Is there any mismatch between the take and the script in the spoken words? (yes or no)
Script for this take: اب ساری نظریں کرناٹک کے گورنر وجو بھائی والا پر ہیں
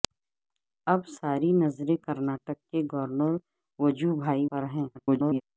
yes